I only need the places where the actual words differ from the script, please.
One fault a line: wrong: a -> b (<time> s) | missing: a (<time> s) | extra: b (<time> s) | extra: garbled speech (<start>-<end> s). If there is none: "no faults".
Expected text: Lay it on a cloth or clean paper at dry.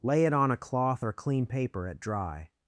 no faults